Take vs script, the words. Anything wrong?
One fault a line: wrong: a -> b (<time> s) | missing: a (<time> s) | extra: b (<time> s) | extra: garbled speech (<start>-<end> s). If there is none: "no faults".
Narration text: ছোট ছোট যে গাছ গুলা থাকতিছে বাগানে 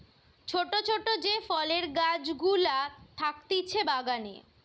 extra: ফলের (1.5 s)